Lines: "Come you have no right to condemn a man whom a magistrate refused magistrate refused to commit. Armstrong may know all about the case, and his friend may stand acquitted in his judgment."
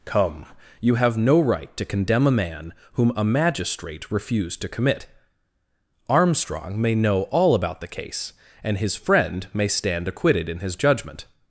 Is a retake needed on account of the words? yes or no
yes